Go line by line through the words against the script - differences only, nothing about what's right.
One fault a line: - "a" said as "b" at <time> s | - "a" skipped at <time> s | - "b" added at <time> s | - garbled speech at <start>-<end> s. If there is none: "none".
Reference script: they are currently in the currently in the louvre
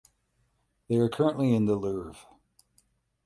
- "currently in the" skipped at 1.8 s